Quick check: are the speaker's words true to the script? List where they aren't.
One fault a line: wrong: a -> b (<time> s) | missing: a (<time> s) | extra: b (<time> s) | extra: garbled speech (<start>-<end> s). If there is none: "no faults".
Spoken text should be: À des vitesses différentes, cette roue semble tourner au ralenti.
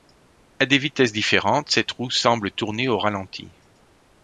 no faults